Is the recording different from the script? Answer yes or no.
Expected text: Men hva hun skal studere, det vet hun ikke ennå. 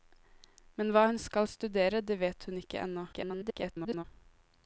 yes